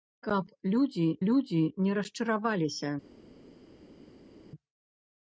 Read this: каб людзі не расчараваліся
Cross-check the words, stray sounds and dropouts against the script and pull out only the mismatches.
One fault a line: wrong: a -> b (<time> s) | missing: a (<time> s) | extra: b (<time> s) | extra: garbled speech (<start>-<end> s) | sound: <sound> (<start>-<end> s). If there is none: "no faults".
extra: людзі (1.3 s)